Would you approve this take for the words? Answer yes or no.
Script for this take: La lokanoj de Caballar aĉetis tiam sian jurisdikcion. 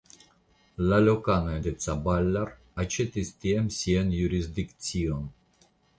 yes